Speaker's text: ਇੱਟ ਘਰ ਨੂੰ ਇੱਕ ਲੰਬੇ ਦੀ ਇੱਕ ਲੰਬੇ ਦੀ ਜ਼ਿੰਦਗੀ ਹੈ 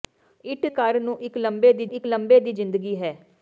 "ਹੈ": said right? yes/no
yes